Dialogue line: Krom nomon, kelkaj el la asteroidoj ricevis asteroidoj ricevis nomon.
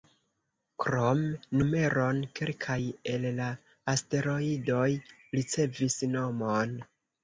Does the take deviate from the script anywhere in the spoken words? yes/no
yes